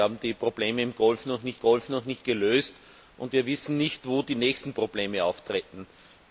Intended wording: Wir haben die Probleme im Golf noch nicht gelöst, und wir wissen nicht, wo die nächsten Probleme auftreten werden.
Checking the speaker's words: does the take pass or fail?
fail